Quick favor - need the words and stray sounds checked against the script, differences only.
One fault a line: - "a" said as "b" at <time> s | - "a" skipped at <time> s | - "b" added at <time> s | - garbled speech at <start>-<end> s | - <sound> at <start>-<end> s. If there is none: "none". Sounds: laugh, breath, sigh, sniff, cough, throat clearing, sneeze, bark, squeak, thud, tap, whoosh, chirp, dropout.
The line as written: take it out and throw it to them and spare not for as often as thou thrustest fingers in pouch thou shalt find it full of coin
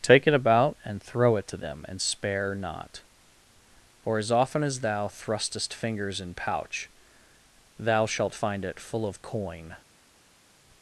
- "out" said as "about" at 0.3 s